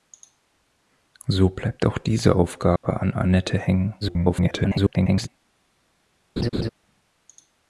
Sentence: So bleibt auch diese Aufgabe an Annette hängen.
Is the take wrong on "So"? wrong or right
right